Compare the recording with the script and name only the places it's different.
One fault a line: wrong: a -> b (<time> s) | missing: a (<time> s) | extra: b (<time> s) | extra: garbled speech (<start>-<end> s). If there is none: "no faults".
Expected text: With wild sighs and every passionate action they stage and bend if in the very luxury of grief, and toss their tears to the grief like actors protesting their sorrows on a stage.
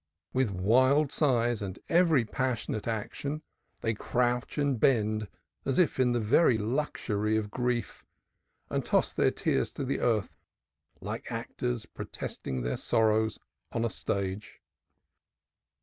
wrong: stage -> crouch (3.9 s)
extra: as (5.7 s)
wrong: grief -> earth (10.0 s)